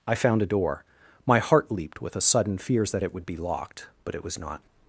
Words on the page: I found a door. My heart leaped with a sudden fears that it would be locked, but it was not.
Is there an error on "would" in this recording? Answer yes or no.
no